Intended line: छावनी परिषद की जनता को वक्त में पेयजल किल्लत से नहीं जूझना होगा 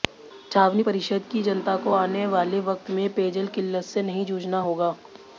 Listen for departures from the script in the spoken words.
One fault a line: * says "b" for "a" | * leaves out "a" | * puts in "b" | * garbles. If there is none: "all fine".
* puts in "आने वाले"